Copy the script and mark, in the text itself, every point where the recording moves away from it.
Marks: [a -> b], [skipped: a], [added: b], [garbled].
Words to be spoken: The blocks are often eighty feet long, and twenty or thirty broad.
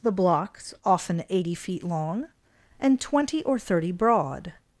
The blocks [skipped: are] often eighty feet long, and twenty or thirty broad.